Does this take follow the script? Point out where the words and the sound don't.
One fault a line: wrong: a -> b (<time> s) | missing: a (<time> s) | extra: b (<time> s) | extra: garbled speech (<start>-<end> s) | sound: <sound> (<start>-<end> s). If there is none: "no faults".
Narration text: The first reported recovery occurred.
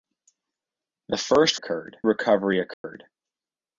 wrong: reported -> occurred (1.5 s)
sound: dropout (2.7-2.8 s)